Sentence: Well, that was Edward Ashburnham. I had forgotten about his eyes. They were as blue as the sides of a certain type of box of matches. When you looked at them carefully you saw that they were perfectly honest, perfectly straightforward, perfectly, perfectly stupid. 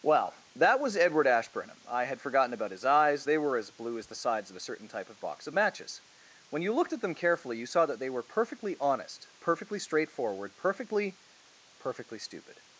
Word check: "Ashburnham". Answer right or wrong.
right